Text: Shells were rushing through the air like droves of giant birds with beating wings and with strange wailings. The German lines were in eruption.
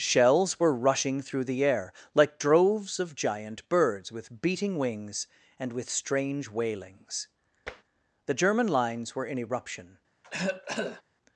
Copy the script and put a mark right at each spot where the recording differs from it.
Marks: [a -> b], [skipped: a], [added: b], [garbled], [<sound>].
Shells were rushing through the air like droves of giant birds with beating wings and with strange wailings. [tap] The German lines were in eruption. [cough]